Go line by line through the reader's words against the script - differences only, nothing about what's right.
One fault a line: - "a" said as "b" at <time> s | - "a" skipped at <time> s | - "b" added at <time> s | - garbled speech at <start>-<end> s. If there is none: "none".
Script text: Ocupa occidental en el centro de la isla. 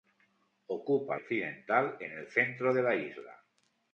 none